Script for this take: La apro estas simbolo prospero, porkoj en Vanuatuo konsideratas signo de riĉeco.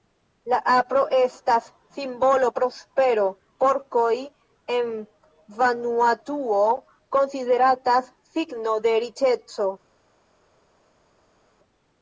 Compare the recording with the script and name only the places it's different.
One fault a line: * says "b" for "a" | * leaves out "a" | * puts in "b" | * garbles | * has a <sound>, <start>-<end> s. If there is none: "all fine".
all fine